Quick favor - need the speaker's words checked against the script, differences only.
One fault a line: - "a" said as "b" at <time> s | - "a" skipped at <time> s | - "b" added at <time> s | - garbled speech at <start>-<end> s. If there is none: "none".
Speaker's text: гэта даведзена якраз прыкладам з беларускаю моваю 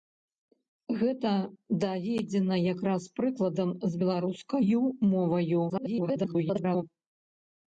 - garbled speech at 5.7-6.8 s